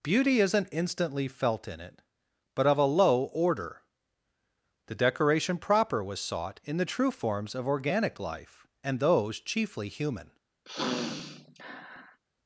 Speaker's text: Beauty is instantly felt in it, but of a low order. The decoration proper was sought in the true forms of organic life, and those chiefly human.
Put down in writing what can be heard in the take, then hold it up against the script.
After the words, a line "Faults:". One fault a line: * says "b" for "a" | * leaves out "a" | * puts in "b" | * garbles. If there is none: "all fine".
Beauty isn't instantly felt in it, but of a low order. The decoration proper was sought in the true forms of organic life, and those chiefly human.
Faults:
* says "isn't" for "is"